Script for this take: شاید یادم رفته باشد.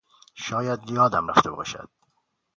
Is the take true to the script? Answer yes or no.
yes